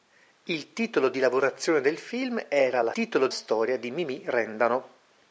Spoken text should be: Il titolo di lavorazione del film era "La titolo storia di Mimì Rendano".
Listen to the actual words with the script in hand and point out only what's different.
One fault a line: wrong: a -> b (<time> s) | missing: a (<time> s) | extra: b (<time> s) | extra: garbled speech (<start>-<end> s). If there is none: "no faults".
no faults